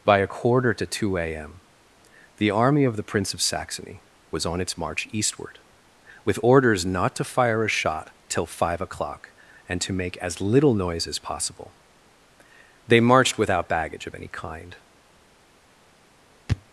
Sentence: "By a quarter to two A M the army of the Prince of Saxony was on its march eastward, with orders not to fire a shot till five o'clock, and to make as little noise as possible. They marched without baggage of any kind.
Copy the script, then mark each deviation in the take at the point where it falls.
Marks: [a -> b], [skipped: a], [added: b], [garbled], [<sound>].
"By a quarter to two A M the army of the Prince of Saxony was on its march eastward, with orders not to fire a shot till five o'clock, and to make as little noise as possible. They marched without baggage of any kind.